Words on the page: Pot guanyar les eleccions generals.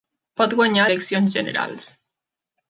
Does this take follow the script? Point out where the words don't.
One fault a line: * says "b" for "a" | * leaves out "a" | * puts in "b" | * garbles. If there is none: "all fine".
* leaves out "les"